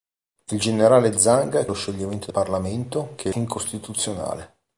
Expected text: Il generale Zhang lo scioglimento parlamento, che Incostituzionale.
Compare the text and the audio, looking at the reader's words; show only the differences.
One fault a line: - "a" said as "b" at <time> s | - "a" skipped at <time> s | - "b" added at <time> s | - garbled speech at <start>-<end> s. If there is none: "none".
none